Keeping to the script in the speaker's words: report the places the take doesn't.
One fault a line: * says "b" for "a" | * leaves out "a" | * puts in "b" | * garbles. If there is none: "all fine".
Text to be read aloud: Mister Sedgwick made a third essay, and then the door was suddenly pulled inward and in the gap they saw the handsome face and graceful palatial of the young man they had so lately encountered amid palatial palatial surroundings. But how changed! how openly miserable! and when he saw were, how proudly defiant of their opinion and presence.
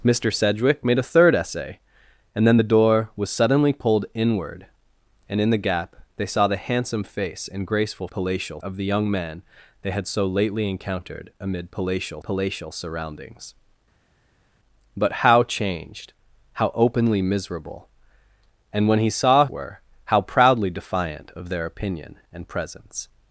all fine